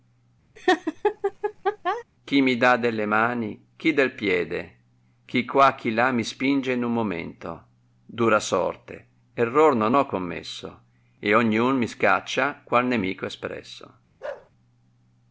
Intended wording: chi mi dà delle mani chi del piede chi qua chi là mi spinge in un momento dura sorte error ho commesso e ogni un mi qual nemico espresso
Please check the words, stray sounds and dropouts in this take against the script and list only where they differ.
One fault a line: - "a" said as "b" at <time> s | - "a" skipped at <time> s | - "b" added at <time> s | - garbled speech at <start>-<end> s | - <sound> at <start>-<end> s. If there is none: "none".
- laugh at 0.6-2.0 s
- "non" added at 9.8 s
- "scaccia" added at 11.9 s
- bark at 14.2-14.5 s